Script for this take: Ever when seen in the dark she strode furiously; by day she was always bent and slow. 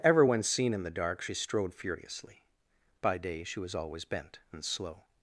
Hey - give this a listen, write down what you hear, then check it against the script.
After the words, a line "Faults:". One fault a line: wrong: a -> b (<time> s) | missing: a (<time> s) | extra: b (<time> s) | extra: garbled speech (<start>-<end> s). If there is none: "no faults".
Ever when seen in the dark she strode furiously; by day she was always bent and slow.
Faults:
no faults